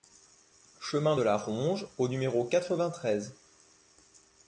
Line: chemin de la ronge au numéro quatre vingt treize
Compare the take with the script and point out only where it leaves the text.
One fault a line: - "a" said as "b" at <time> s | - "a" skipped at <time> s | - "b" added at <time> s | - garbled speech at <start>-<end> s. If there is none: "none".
none